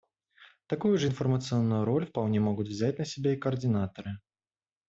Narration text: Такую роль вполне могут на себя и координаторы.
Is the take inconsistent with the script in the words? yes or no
yes